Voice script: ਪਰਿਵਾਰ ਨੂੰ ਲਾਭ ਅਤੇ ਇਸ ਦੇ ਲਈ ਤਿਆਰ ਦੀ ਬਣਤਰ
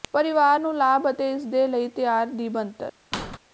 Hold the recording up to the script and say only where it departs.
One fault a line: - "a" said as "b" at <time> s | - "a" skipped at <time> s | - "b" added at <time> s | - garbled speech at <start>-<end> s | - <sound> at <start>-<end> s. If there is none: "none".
- squeak at 3.1-3.4 s